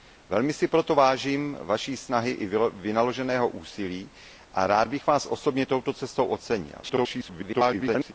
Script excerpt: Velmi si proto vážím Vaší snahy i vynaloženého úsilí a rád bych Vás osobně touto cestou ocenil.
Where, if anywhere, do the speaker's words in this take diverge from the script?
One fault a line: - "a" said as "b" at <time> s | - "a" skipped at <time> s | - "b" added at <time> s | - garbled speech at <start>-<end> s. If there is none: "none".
- garbled speech at 6.8-8.1 s